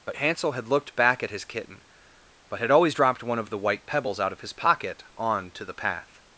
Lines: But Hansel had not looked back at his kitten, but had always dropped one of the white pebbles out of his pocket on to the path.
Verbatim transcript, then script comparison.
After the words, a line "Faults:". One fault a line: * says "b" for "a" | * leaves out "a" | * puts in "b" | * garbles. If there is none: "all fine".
But Hansel had looked back at his kitten, but had always dropped one of the white pebbles out of his pocket on to the path.
Faults:
* leaves out "not"